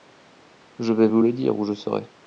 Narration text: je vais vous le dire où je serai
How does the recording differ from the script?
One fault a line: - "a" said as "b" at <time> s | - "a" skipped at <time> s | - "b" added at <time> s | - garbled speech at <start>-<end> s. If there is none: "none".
none